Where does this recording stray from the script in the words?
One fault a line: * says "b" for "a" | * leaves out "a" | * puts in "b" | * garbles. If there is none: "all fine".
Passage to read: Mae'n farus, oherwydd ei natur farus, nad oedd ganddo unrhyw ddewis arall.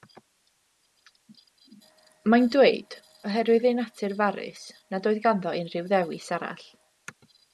* says "dweud" for "farus"